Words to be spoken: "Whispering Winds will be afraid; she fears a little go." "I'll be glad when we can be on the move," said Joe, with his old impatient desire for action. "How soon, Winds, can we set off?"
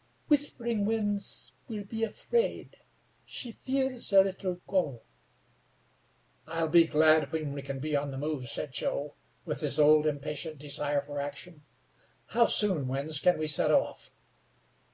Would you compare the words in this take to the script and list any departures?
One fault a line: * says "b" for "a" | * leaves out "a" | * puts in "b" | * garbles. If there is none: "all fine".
all fine